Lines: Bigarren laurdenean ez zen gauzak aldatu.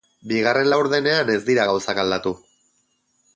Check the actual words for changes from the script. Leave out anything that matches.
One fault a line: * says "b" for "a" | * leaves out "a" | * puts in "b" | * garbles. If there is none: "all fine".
* says "dira" for "zen"